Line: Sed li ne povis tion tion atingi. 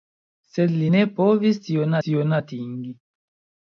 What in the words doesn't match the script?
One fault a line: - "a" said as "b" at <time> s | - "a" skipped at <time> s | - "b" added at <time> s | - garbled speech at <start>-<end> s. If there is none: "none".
none